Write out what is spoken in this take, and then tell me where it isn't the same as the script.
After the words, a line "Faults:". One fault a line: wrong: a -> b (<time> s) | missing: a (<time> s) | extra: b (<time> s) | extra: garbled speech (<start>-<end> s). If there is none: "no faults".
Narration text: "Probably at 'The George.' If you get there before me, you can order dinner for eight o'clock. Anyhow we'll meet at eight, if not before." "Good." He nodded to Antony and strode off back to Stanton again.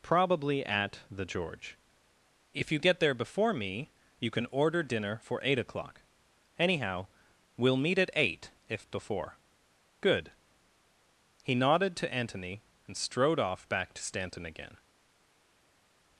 "Probably at 'The George.' If you get there before me, you can order dinner for eight o'clock. Anyhow we'll meet at eight, if before." "Good." He nodded to Antony and strode off back to Stanton again.
Faults:
missing: not (8.9 s)